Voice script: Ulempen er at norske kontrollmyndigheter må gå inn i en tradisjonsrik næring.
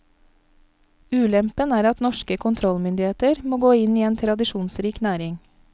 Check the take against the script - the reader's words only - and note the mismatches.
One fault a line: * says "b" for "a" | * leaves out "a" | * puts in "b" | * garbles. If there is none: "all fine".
all fine